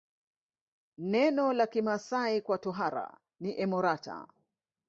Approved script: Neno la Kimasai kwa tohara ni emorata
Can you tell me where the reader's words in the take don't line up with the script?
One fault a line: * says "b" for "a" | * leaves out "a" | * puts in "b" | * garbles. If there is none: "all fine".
all fine